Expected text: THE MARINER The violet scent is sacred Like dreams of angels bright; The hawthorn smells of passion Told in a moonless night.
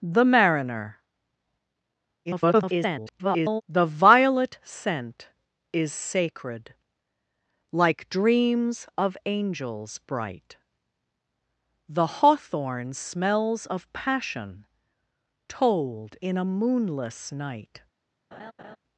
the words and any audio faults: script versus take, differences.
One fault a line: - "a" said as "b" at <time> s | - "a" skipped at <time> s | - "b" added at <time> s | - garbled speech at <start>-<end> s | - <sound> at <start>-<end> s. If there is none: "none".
- garbled speech at 2.2-3.6 s
- laugh at 18.3-18.8 s